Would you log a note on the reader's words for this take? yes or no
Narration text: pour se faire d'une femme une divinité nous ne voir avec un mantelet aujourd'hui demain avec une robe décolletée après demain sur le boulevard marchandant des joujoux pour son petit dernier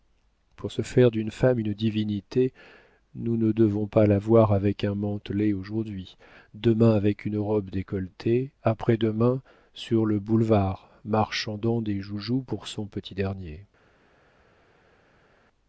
yes